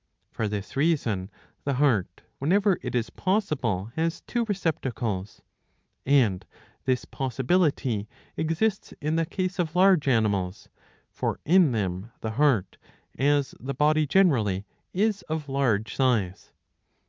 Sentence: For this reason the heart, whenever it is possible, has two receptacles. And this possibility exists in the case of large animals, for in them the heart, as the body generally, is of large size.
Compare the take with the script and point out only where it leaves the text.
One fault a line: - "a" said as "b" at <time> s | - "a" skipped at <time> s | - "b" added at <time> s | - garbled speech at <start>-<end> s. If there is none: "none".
none